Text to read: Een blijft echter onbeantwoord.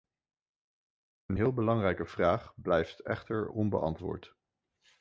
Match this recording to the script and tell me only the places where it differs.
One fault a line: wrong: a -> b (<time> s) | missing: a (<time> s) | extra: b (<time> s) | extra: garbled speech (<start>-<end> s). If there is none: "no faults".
extra: heel belangrijke vraag (1.3 s)